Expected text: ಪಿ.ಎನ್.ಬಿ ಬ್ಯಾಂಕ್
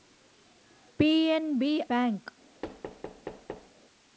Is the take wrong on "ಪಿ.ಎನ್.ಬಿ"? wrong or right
right